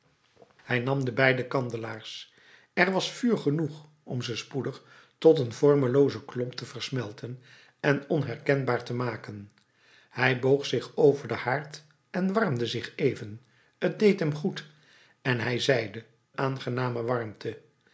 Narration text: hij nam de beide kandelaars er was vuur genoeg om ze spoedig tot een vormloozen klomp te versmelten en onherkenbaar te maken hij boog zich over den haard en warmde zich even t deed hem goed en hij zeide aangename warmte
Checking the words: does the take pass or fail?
pass